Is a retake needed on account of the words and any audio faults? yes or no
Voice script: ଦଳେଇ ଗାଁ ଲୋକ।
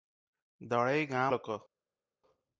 no